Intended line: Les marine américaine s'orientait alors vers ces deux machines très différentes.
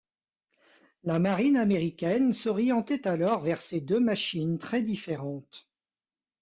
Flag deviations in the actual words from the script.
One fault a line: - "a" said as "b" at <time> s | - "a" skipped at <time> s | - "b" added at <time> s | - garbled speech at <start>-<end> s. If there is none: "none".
- "Les" said as "La" at 1.0 s